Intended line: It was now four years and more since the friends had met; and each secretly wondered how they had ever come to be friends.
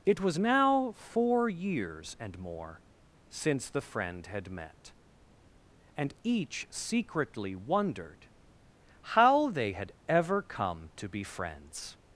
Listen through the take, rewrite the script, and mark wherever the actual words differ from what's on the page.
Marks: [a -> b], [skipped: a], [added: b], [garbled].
It was now four years and more since the [friends -> friend] had met; and each secretly wondered how they had ever come to be friends.